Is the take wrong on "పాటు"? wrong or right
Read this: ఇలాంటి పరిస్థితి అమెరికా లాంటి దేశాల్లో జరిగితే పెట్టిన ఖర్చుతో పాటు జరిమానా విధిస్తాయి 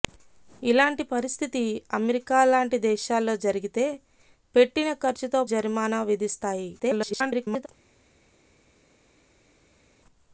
wrong